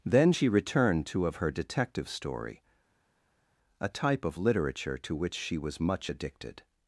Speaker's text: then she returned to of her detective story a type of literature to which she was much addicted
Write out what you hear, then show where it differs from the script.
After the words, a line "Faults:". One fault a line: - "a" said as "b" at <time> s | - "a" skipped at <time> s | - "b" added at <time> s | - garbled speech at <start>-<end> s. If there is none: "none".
then she returned to of her detective story a type of literature to which she was much addicted
Faults:
none